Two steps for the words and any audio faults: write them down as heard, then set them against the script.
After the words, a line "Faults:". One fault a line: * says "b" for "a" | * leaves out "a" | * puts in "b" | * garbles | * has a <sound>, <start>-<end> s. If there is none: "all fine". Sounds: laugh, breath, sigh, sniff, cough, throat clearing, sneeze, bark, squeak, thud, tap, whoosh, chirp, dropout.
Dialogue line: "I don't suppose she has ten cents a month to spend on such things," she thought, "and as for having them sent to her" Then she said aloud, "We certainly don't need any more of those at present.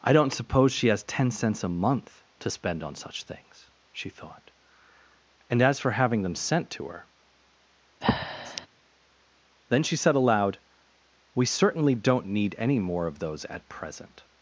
"I don't suppose she has ten cents a month to spend on such things," she thought, "and as for having them sent to her" Then she said aloud, "We certainly don't need any more of those at present.
Faults:
* has a breath, 8.0-8.7 s